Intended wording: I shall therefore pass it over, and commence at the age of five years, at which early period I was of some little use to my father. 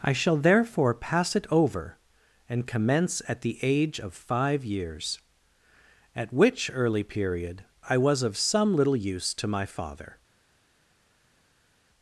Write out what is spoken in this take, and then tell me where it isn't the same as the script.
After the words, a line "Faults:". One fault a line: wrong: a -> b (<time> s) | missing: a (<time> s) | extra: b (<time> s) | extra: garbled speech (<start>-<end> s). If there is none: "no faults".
I shall therefore pass it over, and commence at the age of five years, at which early period I was of some little use to my father.
Faults:
no faults